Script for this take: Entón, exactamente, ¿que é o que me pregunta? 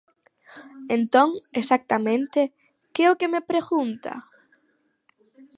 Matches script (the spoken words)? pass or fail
pass